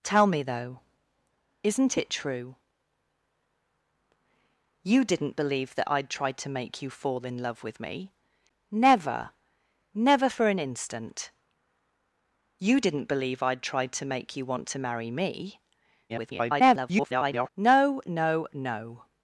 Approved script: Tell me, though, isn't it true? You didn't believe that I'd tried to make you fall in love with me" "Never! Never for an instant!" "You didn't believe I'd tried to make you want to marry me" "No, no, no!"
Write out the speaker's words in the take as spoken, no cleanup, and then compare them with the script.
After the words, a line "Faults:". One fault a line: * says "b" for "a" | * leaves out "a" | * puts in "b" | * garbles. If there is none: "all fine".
Tell me, though, isn't it true? You didn't believe that I'd tried to make you fall in love with me" "Never! Never for an instant!" "You didn't believe I'd tried to make you want to marry me" [garbled] "No, no, no!"
Faults:
* garbles